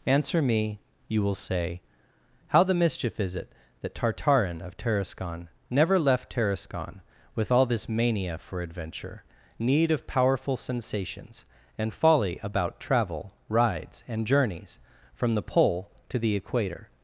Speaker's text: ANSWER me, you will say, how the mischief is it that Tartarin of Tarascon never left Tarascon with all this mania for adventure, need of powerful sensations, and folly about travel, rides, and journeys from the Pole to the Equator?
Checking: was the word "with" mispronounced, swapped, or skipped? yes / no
no